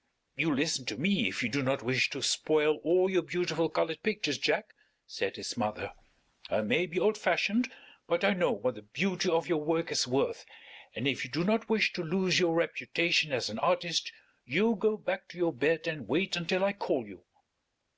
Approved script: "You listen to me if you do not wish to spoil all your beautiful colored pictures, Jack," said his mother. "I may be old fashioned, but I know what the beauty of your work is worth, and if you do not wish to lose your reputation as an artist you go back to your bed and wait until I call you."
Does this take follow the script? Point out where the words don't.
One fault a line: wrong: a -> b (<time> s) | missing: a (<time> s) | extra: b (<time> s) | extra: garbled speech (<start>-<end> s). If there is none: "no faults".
no faults